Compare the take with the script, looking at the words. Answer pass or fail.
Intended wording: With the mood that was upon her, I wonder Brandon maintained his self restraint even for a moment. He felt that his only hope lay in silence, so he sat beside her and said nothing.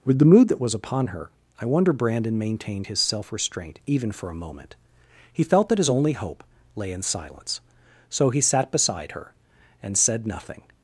pass